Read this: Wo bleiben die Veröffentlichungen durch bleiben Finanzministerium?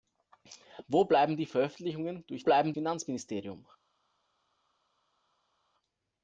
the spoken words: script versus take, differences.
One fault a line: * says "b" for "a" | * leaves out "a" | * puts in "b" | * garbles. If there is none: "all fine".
all fine